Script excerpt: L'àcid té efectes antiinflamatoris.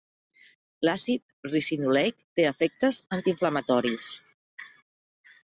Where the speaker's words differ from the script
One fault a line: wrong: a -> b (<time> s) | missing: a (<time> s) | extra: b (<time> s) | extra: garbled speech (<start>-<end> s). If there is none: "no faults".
extra: ricinoleic (1.5 s)